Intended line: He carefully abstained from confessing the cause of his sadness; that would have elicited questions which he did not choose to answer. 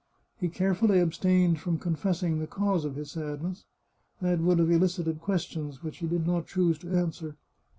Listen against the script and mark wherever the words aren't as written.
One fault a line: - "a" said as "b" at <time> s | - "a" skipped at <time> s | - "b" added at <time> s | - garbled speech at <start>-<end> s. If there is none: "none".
none